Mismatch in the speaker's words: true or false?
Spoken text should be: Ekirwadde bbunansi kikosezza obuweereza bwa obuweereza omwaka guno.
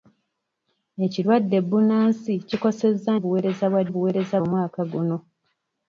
false